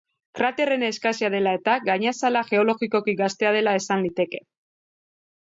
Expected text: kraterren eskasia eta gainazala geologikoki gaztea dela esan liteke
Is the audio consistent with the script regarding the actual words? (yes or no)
no